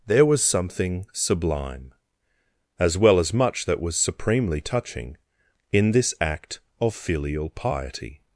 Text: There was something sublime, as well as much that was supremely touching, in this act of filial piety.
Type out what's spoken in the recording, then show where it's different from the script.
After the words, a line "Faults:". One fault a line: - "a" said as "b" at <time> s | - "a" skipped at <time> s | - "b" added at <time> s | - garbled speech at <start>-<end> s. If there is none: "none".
There was something sublime, as well as much that was supremely touching, in this act of filial piety.
Faults:
none